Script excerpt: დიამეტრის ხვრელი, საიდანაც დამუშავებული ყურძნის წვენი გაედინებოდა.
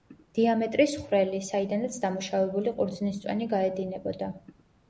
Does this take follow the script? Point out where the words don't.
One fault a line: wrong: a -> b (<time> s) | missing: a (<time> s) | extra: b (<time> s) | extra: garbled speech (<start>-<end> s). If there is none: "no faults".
no faults